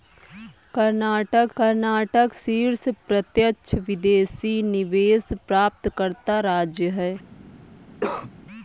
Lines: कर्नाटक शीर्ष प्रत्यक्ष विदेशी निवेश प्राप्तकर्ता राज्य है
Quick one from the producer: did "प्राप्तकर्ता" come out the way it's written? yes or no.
yes